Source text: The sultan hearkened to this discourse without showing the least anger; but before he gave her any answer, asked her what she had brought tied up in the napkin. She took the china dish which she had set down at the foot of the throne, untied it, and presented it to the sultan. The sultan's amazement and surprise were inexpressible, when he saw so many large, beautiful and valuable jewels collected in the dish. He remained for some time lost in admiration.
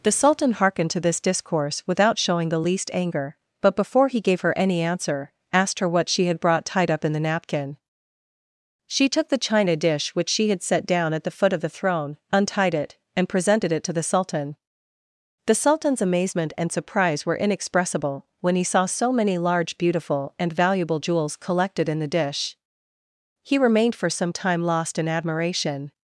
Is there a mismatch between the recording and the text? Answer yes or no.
no